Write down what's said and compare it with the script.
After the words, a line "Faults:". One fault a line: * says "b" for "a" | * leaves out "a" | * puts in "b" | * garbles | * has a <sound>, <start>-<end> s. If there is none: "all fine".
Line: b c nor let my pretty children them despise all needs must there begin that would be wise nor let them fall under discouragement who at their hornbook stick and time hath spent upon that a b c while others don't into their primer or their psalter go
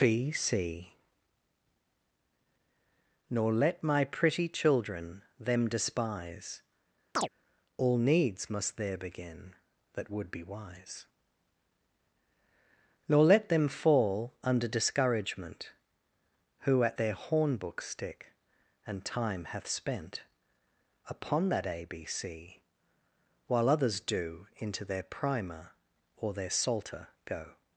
b c nor let my pretty children them despise all needs must there begin that would be wise nor let them fall under discouragement who at their hornbook stick and time hath spent upon that a b c while others do into their primer or their psalter go
Faults:
* has a chirp, 7.2-7.3 s
* says "do" for "don't"